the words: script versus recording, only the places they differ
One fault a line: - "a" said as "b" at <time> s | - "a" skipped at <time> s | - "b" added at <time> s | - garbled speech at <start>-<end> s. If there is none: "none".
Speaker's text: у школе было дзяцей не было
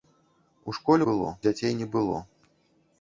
none